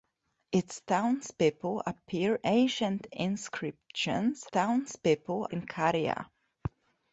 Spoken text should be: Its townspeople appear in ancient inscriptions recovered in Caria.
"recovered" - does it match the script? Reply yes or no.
no